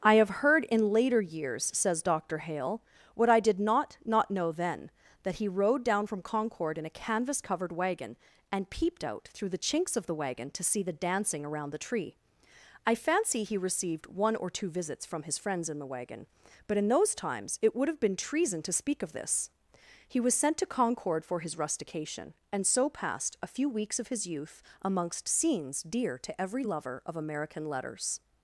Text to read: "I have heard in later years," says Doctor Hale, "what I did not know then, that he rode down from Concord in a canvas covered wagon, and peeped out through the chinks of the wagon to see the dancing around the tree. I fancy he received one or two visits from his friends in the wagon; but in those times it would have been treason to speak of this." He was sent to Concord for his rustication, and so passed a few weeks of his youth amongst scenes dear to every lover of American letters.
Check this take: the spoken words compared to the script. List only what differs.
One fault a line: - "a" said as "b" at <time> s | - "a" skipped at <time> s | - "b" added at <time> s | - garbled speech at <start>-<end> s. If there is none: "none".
- "not" added at 4.0 s